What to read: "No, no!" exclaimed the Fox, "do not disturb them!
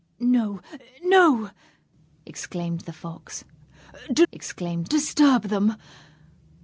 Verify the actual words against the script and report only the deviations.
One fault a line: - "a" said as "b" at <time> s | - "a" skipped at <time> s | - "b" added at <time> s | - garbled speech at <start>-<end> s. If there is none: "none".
- "not" said as "exclaimed" at 4.3 s